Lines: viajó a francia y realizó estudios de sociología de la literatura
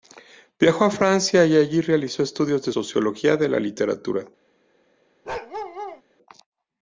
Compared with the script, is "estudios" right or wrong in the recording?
right